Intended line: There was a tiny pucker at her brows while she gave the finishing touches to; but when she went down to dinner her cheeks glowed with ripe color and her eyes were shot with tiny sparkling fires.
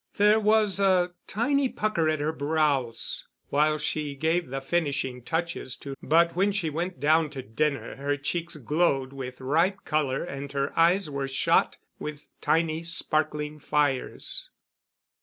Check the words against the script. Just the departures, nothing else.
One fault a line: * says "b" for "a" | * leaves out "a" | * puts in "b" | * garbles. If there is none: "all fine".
all fine